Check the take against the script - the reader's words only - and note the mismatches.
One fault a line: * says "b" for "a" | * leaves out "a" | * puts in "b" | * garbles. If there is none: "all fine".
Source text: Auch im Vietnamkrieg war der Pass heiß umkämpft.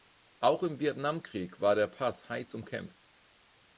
all fine